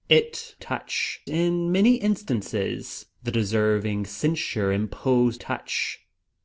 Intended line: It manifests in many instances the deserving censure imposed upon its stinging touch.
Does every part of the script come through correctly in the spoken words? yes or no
no